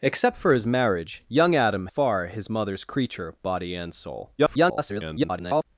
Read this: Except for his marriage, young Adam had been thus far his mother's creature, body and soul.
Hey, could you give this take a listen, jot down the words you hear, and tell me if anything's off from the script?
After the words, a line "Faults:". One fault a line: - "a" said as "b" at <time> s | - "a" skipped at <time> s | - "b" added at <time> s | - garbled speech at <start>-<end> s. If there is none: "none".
Except for his marriage, young Adam far his mother's creature, body and soul. [garbled]
Faults:
- "had been thus" skipped at 1.9 s
- garbled speech at 4.4-5.6 s